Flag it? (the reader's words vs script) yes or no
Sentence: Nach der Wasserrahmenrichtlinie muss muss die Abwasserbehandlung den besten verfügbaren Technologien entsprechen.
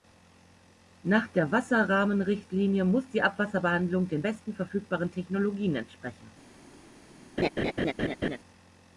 yes